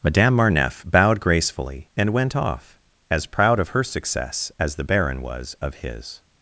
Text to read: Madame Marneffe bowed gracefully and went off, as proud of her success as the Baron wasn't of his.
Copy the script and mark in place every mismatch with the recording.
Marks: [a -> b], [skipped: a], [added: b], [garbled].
Madame Marneffe bowed gracefully and went off, as proud of her success as the Baron [wasn't -> was] of his.